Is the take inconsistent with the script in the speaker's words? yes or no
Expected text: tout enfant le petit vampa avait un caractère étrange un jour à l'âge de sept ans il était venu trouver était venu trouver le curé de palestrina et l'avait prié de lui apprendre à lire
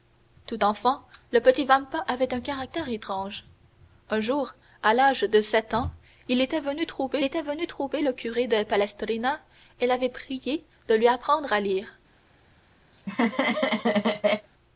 no